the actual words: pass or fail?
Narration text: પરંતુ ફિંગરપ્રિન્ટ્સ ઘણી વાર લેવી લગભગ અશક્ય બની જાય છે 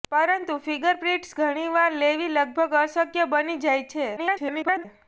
fail